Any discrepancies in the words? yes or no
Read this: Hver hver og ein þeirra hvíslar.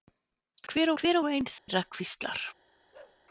no